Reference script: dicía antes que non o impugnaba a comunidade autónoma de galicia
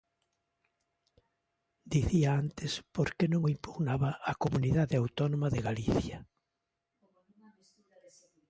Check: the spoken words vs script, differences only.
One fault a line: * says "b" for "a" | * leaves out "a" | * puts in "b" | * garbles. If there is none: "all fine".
* puts in "por"